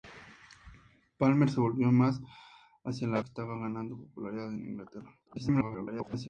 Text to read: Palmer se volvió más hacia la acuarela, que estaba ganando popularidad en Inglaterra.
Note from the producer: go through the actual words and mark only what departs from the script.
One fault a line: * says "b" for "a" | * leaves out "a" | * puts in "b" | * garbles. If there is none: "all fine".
* leaves out "acuarela"
* garbles